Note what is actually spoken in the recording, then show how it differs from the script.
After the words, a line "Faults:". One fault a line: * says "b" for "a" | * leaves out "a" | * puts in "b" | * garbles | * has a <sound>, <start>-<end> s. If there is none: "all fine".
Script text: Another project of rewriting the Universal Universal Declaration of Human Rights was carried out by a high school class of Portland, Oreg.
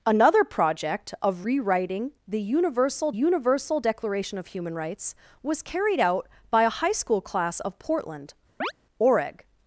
Another project of rewriting the Universal Universal Declaration of Human Rights was carried out by a high school class of Portland, Oreg.
Faults:
* has a chirp, 8.6-8.7 s